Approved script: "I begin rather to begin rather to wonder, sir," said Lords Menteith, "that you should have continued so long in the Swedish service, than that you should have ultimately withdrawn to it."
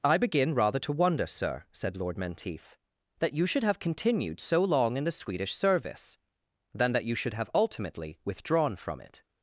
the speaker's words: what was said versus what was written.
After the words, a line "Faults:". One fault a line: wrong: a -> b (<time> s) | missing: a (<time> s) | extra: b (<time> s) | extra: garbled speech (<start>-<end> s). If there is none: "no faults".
"I begin rather to wonder, sir," said Lord Menteith, "that you should have continued so long in the Swedish service, than that you should have ultimately withdrawn from it."
Faults:
missing: begin rather to (0.9 s)
wrong: Lords -> Lord (1.9 s)
wrong: to -> from (8.8 s)